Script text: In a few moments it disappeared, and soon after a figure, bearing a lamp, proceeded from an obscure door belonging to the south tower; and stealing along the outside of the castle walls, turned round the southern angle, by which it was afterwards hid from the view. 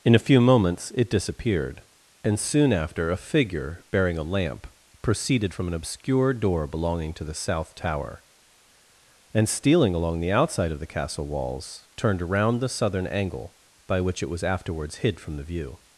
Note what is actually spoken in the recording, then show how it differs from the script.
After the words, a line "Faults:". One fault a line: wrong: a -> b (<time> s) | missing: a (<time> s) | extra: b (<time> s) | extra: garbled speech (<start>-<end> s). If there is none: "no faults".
In a few moments it disappeared, and soon after a figure, bearing a lamp, proceeded from an obscure door belonging to the south tower; and stealing along the outside of the castle walls, turned around the southern angle, by which it was afterwards hid from the view.
Faults:
wrong: round -> around (12.2 s)